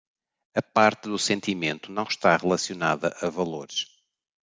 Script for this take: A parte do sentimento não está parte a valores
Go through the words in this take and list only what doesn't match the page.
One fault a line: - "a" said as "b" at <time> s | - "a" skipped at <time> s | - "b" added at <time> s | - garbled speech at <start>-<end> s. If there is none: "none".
- "parte" said as "relacionada" at 2.4 s